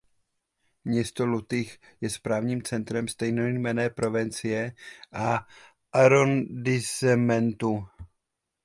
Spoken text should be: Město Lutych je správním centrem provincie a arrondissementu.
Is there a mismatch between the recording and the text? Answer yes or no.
yes